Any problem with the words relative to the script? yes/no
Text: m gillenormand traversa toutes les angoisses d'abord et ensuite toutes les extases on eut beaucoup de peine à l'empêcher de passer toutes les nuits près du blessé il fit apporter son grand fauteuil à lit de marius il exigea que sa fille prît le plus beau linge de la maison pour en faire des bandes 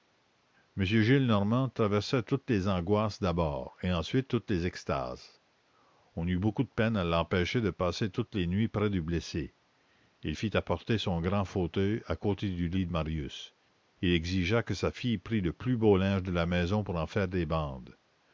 yes